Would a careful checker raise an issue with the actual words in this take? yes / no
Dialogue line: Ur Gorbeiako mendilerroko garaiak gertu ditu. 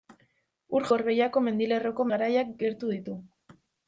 no